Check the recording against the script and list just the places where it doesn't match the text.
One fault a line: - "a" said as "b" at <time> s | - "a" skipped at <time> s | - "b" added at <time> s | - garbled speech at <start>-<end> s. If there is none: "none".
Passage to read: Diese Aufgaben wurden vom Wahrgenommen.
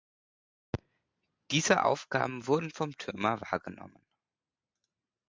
- "Türmer" added at 3.0 s